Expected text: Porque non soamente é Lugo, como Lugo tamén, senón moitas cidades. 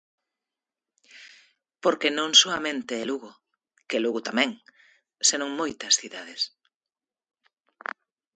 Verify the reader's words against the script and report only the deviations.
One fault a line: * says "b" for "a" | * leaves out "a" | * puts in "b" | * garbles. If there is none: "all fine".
* says "que" for "como"